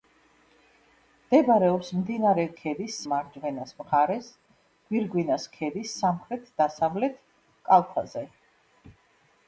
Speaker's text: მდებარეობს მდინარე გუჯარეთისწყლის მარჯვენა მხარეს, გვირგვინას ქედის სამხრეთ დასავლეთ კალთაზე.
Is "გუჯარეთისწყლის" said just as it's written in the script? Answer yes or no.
no